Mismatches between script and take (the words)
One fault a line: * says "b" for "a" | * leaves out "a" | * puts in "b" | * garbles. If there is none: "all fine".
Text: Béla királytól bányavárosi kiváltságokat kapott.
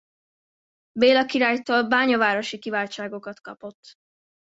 all fine